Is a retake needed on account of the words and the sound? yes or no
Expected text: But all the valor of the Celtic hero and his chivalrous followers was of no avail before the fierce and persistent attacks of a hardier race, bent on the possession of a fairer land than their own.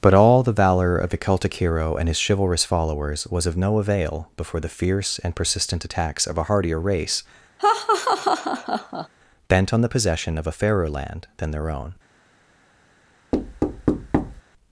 yes